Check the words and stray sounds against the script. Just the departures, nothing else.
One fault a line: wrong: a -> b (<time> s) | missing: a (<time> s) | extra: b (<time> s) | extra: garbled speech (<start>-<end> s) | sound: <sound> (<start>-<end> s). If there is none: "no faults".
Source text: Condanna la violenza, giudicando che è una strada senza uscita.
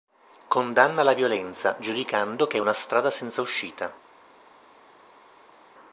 no faults